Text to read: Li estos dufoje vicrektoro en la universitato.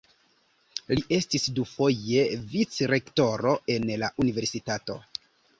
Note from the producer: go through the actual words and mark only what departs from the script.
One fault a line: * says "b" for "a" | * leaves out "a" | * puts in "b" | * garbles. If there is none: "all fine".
* says "estis" for "estos"